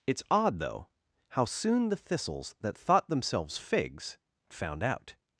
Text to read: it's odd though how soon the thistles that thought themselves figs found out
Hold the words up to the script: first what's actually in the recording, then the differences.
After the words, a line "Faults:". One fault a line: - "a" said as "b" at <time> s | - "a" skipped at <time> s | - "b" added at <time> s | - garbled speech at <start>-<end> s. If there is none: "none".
it's odd though how soon the thistles that thought themselves figs found out
Faults:
none